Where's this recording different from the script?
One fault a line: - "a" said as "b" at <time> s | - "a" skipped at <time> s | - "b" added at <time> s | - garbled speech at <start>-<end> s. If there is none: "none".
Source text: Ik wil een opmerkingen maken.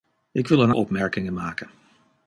none